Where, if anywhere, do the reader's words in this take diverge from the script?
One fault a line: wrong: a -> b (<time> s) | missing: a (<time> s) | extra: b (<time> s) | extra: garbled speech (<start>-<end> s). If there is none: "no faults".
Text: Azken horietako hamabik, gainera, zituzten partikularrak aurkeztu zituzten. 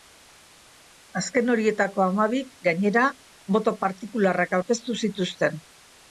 wrong: zituzten -> boto (3.6 s)